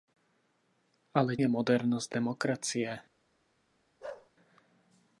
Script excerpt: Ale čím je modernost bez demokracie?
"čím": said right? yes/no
no